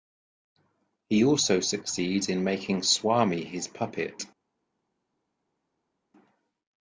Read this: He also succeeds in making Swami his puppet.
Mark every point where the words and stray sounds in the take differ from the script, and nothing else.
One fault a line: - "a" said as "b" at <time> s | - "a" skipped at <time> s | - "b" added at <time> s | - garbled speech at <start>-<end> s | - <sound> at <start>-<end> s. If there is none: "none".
none